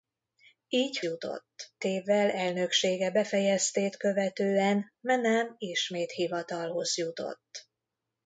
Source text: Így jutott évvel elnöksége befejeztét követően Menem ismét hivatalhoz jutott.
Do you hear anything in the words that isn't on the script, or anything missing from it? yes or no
no